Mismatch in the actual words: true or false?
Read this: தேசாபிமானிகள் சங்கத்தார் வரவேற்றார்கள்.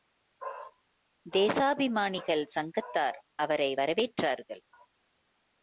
true